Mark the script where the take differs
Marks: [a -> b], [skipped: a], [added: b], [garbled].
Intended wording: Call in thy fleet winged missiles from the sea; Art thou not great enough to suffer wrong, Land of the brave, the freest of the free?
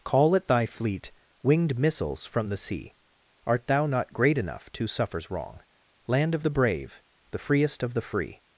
Call [in -> at] thy fleet winged missiles from the sea; Art thou not great enough to [suffer -> suffers] wrong, Land of the brave, the freest of the free?